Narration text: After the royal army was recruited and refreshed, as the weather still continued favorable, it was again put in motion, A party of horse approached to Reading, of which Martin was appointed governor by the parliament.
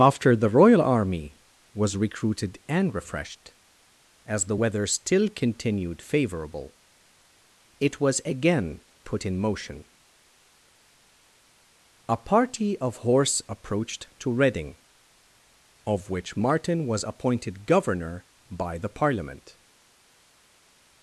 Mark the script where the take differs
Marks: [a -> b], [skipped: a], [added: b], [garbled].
After the royal army was recruited and refreshed, as the weather still continued favorable, it was again put in motion, A party of horse approached to Reading, of which Martin was appointed governor by the parliament.